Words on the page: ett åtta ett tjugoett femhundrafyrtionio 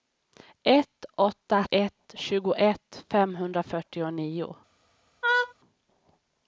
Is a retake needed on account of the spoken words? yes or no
no